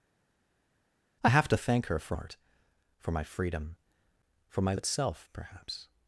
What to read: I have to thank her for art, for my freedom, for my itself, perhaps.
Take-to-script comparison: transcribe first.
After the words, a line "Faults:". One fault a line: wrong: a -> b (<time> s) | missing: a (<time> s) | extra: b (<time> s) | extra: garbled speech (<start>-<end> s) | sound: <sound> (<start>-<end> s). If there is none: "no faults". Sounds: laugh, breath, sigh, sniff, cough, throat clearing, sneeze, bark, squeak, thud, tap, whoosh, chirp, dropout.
I have to thank her for art, for my freedom, for my itself, perhaps.
Faults:
no faults